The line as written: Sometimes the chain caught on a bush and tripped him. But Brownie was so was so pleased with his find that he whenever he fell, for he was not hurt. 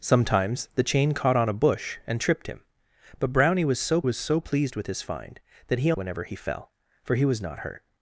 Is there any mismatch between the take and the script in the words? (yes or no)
no